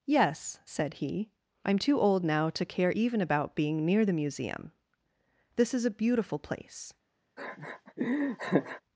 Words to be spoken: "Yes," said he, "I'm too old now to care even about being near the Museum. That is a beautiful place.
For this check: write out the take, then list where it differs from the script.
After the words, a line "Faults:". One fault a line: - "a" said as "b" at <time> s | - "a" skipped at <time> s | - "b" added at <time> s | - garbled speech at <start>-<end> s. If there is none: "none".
"Yes," said he, "I'm too old now to care even about being near the Museum. This is a beautiful place.
Faults:
- "That" said as "This" at 5.6 s